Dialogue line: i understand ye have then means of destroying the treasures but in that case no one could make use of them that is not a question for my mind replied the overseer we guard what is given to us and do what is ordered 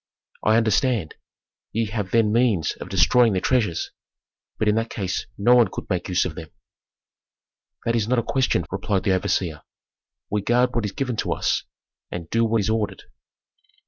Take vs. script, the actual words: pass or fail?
fail